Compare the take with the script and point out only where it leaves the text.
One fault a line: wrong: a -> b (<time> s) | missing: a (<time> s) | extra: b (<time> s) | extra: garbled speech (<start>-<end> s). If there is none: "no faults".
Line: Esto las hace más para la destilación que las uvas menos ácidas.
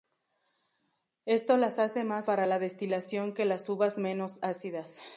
no faults